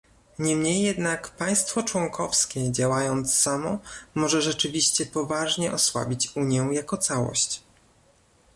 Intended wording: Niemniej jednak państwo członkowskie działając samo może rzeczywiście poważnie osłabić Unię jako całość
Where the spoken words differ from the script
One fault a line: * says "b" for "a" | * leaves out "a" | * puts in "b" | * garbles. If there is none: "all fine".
all fine